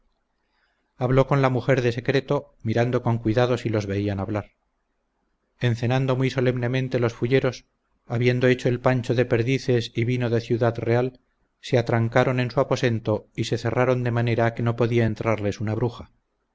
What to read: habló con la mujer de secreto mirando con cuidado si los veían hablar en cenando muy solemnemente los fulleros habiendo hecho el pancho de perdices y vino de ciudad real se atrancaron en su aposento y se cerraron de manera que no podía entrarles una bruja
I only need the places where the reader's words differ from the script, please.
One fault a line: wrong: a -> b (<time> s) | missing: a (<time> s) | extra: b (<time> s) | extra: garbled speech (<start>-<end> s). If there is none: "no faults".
no faults